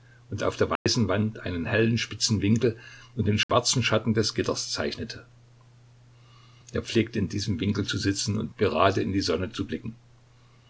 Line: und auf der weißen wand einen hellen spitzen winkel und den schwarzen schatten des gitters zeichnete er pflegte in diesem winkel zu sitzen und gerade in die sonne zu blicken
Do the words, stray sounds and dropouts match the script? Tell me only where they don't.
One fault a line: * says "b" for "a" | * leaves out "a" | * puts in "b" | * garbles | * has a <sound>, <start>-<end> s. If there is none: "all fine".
* has a dropout, 0.8-0.9 s
* has a dropout, 3.4-3.5 s